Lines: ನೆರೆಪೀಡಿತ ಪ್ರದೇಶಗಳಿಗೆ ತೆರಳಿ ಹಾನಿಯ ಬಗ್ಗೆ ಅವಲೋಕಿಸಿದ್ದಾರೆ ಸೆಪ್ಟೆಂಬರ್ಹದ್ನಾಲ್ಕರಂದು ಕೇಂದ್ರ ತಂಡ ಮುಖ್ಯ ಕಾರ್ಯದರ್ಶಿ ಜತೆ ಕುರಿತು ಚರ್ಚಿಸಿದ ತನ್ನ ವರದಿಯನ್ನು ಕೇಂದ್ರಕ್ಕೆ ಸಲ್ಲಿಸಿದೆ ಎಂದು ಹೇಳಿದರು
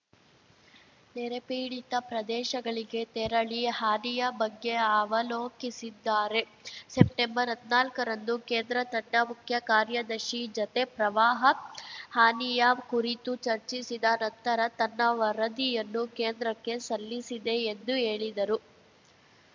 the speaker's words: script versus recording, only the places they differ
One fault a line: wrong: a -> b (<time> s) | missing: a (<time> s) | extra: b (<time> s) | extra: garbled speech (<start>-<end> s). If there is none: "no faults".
extra: ಪ್ರವಾಹ ಹಾನಿಯ (10.9 s)
extra: ನಂತರ (14.2 s)